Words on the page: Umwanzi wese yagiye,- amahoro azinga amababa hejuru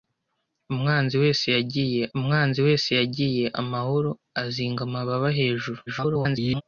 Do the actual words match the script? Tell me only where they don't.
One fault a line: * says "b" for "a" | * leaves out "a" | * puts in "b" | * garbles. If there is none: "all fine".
* puts in "umwanzi wese yagiye"
* garbles